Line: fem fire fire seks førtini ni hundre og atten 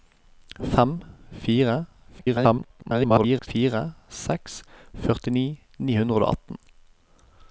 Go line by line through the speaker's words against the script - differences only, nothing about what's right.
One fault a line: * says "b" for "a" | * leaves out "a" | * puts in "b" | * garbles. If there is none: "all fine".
* garbles